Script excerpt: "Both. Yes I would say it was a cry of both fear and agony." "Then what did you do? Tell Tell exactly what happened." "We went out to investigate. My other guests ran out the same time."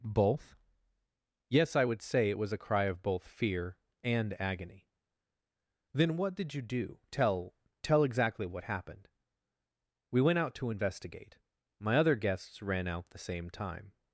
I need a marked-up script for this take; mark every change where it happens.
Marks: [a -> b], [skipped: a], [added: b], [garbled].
"Both. Yes I would say it was a cry of both fear and agony." "Then what did you do? Tell Tell exactly what happened." "We went out to investigate. My other guests ran out the same time."